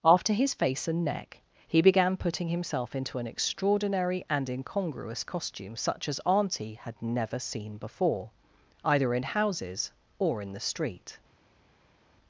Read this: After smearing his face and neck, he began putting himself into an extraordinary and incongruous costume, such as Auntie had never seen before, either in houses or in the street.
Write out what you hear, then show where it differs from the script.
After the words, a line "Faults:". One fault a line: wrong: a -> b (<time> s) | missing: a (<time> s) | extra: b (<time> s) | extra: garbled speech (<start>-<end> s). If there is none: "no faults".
After his face and neck, he began putting himself into an extraordinary and incongruous costume, such as Auntie had never seen before, either in houses or in the street.
Faults:
missing: smearing (0.3 s)